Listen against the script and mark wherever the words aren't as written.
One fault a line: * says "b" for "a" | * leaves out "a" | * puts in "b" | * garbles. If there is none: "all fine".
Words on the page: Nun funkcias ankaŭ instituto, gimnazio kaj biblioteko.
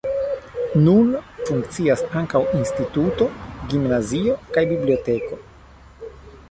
all fine